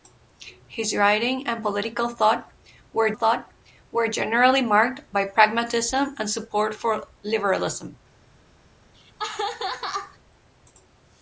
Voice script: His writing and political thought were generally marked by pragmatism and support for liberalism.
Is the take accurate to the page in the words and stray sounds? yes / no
no